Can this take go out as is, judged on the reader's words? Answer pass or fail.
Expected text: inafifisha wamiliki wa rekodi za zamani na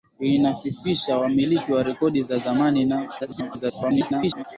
fail